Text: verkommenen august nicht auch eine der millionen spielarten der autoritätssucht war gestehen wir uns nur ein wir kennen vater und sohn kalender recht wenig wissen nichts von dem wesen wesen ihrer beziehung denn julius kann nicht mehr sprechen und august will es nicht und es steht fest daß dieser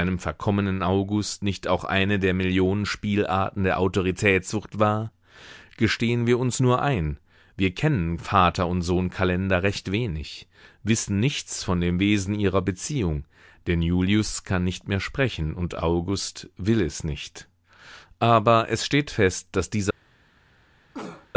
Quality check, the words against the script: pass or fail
fail